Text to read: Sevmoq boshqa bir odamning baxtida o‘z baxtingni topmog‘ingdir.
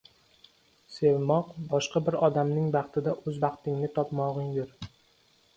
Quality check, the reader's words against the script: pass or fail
pass